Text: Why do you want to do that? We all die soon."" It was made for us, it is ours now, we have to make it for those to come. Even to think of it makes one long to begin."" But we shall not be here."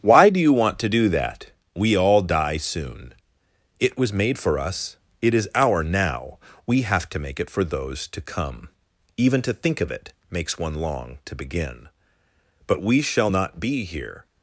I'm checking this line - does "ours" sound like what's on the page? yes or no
no